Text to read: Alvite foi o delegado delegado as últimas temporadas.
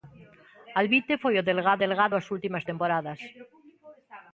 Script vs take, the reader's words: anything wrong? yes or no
no